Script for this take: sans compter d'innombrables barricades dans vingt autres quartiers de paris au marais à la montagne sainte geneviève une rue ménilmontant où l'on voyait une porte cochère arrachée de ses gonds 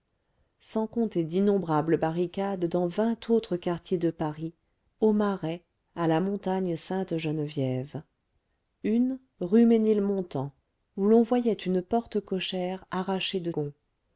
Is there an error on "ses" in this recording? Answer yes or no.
yes